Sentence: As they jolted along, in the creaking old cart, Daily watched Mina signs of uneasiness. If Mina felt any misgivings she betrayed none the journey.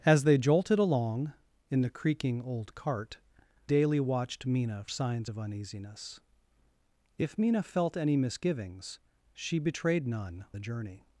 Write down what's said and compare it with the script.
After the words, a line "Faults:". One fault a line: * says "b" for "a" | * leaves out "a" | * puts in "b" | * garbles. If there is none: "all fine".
As they jolted along, in the creaking old cart, Daily watched Mina signs of uneasiness. If Mina felt any misgivings she betrayed none the journey.
Faults:
all fine